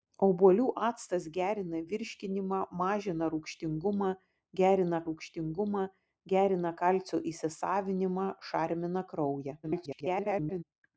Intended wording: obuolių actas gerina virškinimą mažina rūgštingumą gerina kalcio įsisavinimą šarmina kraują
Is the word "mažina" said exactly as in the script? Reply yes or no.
yes